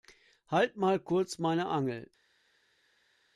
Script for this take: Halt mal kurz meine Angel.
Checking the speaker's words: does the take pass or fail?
pass